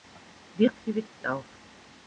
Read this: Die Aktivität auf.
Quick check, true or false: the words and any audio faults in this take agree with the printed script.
false